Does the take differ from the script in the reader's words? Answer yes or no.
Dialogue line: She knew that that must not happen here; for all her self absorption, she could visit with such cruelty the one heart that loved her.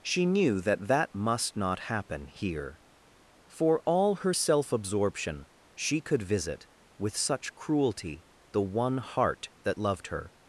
no